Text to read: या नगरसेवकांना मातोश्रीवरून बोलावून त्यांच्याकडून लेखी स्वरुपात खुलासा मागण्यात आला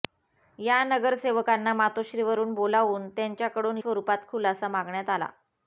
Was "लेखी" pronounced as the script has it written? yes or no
no